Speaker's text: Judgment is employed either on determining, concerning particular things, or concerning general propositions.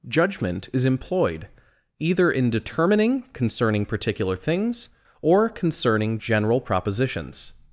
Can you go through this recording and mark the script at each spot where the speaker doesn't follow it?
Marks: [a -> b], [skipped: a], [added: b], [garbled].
Judgment is employed either [on -> in] determining, concerning particular things, or concerning general propositions.